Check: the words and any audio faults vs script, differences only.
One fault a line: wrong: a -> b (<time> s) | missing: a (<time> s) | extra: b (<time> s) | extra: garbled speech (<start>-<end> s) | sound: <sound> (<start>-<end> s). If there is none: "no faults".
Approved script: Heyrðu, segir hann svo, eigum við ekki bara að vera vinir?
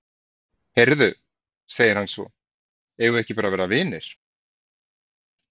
no faults